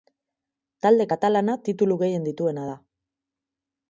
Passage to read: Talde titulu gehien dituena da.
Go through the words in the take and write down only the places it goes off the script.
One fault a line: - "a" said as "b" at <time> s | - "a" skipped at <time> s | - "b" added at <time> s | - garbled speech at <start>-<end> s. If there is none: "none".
- "katalana" added at 1.1 s